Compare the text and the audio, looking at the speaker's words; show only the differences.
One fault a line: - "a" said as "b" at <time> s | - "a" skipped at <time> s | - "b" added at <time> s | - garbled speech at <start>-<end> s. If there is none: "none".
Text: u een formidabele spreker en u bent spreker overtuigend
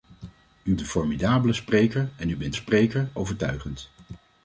none